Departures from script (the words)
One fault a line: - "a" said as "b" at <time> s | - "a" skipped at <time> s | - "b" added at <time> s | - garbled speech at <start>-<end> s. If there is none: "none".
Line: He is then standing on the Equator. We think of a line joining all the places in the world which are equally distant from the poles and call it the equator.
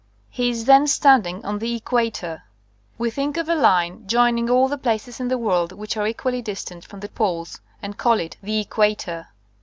none